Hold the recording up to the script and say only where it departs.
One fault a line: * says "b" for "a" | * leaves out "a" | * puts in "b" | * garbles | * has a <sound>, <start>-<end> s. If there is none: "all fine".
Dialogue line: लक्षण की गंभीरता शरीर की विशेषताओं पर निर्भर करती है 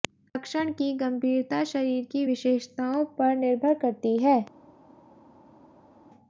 all fine